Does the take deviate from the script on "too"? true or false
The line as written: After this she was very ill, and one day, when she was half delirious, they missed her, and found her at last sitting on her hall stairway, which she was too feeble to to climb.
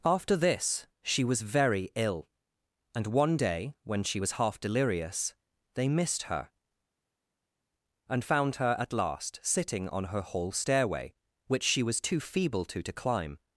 false